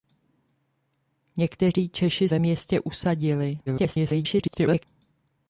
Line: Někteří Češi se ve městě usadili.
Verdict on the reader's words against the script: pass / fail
fail